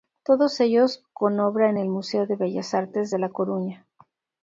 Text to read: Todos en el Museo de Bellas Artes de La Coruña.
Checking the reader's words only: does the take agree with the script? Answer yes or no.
no